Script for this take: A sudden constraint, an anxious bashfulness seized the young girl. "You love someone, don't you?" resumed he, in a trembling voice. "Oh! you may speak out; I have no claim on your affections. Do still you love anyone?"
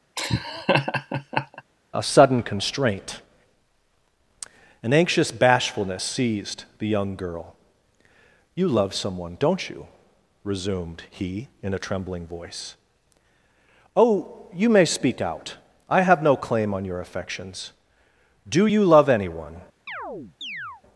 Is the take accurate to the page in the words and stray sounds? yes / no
no